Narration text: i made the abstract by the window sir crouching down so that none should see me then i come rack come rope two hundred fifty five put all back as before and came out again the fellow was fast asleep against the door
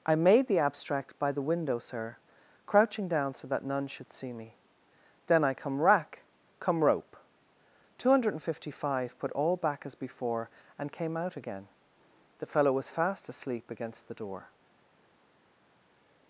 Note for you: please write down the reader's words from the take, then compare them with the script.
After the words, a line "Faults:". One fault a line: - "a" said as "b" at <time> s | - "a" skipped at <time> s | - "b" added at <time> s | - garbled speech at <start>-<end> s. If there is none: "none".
i made the abstract by the window sir crouching down so that none should see me then i come rack come rope two hundred fifty five put all back as before and came out again the fellow was fast asleep against the door
Faults:
none